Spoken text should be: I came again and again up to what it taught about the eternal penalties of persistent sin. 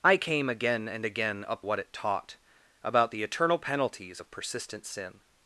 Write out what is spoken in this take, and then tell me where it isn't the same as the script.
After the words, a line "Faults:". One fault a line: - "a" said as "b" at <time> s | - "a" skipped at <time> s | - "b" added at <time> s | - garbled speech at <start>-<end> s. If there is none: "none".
I came again and again up what it taught about the eternal penalties of persistent sin.
Faults:
- "to" skipped at 1.6 s